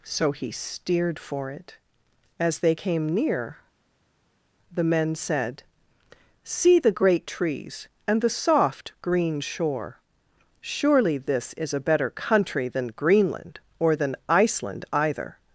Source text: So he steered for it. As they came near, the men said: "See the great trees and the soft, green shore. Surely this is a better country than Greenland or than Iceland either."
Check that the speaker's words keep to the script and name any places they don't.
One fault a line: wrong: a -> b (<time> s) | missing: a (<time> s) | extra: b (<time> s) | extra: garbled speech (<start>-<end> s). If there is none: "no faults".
no faults